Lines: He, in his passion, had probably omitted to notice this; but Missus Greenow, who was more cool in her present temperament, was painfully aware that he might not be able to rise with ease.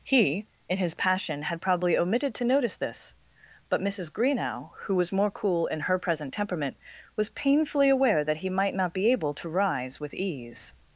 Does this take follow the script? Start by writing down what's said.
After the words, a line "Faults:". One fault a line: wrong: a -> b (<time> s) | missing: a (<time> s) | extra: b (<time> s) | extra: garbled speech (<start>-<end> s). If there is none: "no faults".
He, in his passion, had probably omitted to notice this; but Missus Greenow, who was more cool in her present temperament, was painfully aware that he might not be able to rise with ease.
Faults:
no faults